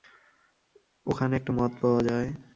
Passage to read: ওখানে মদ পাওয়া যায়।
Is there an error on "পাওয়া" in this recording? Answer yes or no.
no